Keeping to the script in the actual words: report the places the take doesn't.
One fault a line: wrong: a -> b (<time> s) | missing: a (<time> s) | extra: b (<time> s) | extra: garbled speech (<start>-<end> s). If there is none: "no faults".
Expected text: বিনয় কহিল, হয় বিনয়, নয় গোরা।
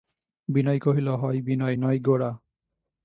no faults